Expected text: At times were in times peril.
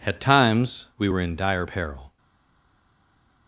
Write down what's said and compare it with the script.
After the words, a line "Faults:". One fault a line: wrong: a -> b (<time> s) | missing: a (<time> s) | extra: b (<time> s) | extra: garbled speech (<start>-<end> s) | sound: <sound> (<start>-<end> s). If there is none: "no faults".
At times we were in dire peril.
Faults:
extra: we (1.0 s)
wrong: times -> dire (1.4 s)